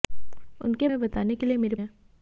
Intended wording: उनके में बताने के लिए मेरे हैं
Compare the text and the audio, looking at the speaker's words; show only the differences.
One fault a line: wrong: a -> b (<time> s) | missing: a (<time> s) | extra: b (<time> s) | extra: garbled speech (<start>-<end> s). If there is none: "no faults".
no faults